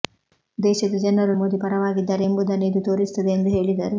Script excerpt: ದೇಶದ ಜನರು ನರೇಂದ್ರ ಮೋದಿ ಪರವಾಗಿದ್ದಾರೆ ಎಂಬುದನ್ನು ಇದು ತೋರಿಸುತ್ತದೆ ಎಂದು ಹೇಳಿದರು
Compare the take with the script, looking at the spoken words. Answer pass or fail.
fail